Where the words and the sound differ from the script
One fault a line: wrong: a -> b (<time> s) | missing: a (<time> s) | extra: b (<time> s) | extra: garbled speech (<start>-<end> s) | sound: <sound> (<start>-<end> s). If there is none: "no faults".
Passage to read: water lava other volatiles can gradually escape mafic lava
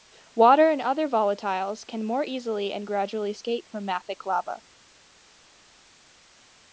wrong: lava -> and (0.7 s)
extra: more easily and (2.0 s)
extra: from (3.7 s)